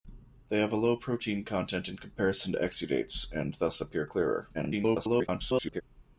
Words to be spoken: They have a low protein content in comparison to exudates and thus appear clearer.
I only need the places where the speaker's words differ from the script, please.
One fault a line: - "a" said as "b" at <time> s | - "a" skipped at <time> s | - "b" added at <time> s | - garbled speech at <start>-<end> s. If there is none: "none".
- garbled speech at 4.5-5.8 s